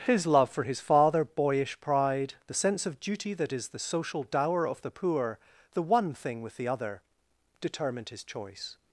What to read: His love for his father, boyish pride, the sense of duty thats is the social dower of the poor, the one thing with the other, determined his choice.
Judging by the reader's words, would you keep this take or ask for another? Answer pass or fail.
fail